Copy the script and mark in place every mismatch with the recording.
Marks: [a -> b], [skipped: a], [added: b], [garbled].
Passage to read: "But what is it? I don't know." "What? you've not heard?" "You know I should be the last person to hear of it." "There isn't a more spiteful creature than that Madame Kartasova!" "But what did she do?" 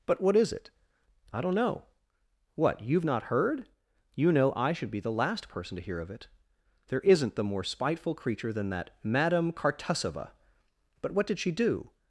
"But what is it? I don't know." "What? you've not heard?" "You know I should be the last person to hear of it." "There isn't [a -> the] more spiteful creature than that Madame Kartasova!" "But what did she do?"